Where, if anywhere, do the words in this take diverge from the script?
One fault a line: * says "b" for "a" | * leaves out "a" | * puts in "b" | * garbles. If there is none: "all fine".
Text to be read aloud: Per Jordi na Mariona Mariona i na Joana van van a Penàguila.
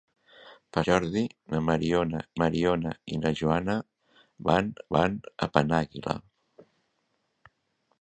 all fine